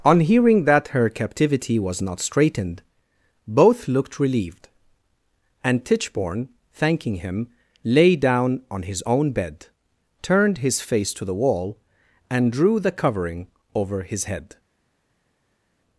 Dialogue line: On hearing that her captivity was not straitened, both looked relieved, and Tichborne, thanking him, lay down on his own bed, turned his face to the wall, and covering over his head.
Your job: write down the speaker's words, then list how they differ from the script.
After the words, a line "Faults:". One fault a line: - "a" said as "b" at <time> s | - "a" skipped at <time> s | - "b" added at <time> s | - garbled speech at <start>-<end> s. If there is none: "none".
On hearing that her captivity was not straitened, both looked relieved, and Tichborne, thanking him, lay down on his own bed, turned his face to the wall, and drew the covering over his head.
Faults:
- "drew the" added at 12.5 s